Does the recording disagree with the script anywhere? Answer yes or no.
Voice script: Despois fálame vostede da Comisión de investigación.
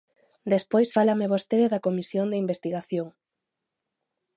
no